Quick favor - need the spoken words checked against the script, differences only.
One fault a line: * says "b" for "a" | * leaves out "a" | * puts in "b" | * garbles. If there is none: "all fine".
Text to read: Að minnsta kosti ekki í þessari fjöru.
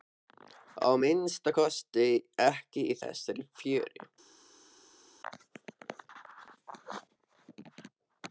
all fine